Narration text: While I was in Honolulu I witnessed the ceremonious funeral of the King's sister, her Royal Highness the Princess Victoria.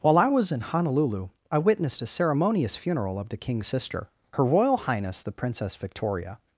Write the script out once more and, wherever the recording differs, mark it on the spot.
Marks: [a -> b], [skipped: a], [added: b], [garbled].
While I was in Honolulu I witnessed [the -> a] ceremonious funeral of the King's sister, her Royal Highness the Princess Victoria.